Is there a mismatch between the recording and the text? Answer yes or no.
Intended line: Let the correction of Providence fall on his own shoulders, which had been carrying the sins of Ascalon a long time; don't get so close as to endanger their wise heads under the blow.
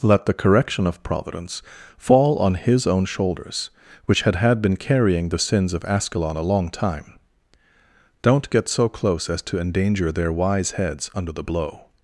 yes